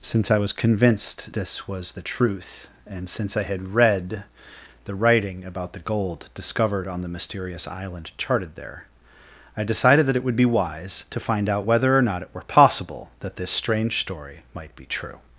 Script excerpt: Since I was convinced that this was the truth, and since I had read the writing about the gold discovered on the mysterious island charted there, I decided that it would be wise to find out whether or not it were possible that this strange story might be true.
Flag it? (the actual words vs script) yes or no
yes